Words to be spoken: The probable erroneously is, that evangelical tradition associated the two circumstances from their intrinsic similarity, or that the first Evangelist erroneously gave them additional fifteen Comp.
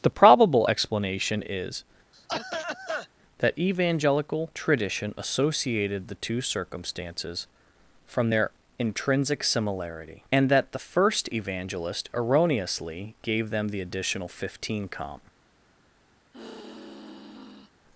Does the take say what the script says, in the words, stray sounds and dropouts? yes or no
no